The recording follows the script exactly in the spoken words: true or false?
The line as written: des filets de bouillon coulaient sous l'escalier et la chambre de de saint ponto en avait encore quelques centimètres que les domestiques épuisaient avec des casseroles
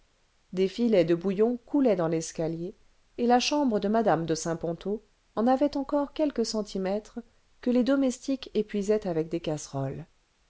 false